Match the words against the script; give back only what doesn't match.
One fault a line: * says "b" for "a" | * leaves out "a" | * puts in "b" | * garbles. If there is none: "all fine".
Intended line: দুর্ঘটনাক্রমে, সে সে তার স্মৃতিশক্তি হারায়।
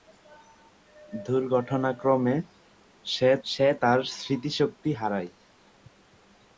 all fine